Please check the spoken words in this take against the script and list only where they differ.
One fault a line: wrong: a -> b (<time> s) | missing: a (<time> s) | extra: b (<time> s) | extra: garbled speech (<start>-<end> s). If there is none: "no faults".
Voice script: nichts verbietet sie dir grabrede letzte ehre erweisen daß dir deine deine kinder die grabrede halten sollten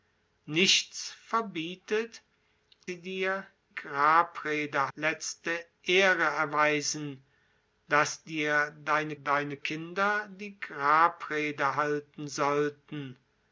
no faults